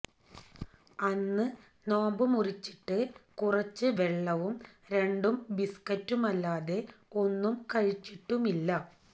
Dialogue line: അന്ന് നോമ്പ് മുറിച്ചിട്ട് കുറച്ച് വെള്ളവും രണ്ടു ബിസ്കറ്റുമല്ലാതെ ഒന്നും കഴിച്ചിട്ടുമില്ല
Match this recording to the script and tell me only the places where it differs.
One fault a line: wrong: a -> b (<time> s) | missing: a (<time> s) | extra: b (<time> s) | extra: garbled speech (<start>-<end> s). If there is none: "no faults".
no faults